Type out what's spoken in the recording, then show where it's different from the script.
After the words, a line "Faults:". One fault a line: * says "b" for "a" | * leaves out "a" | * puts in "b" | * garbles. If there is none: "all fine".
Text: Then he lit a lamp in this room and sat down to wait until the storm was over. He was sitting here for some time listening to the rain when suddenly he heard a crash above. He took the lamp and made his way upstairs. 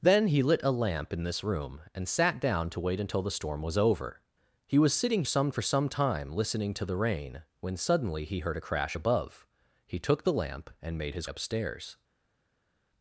Then he lit a lamp in this room and sat down to wait until the storm was over. He was sitting some for some time listening to the rain when suddenly he heard a crash above. He took the lamp and made his upstairs.
Faults:
* says "some" for "here"
* leaves out "way"